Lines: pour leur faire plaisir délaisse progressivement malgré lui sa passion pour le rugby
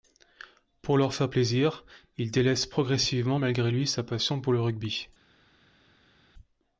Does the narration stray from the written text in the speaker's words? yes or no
yes